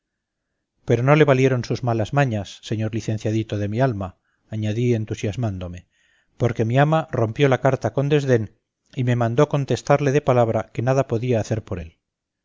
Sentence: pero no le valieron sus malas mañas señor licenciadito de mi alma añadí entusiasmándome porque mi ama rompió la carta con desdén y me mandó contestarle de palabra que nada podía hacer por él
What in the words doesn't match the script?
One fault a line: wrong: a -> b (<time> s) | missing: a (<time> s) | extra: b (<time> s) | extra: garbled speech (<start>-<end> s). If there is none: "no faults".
no faults